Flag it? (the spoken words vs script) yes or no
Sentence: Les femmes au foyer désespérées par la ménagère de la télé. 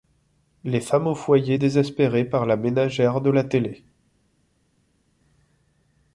no